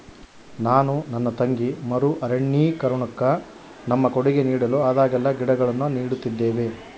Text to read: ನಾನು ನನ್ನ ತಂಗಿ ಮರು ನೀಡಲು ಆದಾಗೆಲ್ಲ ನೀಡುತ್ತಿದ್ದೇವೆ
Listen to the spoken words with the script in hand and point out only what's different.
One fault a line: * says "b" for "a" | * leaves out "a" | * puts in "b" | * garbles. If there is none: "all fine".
* puts in "ಅರಣ್ಯೀಕರಣುಕ್ಕ ನಮ್ಮ ಕೊಡುಗೆ"
* puts in "ಗಿಡಗಳನ್ನು"